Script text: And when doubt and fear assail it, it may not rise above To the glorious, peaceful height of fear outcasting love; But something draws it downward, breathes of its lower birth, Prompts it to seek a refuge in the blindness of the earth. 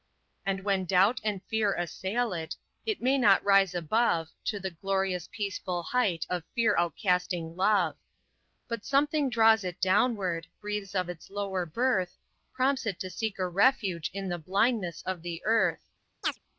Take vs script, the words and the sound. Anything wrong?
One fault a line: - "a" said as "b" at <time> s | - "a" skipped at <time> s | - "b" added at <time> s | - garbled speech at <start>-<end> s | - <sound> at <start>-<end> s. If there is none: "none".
- chirp at 16.2-16.4 s